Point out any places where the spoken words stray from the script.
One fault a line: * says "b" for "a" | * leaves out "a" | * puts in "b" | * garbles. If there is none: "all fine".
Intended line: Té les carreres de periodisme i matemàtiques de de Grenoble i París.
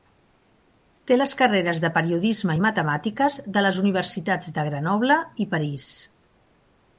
* puts in "les universitats"